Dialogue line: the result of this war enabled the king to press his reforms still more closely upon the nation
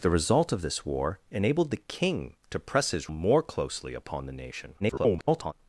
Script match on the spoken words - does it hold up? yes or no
no